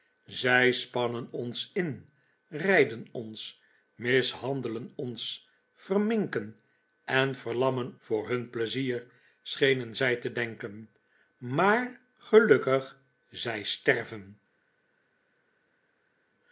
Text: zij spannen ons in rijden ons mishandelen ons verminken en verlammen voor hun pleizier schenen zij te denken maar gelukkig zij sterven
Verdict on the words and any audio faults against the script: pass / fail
pass